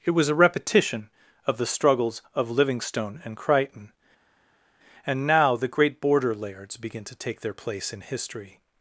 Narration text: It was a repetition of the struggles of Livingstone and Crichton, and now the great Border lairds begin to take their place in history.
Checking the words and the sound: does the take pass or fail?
pass